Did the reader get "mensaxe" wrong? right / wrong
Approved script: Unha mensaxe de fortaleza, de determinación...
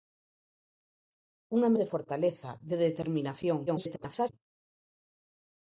wrong